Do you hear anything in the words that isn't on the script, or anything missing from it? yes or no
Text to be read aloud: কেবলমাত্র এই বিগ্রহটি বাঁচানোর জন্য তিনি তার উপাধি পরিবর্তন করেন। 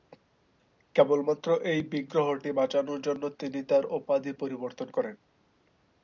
no